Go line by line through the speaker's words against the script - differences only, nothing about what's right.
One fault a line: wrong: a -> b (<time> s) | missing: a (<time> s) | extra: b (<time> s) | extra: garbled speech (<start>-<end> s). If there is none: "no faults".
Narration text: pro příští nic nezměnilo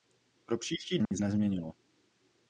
no faults